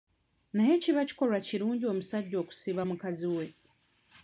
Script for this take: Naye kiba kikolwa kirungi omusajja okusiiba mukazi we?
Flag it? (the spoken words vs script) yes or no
no